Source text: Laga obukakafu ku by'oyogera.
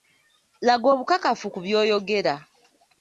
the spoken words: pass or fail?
pass